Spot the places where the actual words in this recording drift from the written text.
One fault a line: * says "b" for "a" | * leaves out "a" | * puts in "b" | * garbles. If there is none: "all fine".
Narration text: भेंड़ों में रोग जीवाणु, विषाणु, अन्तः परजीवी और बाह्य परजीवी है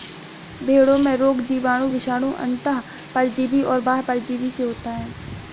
* puts in "से होता"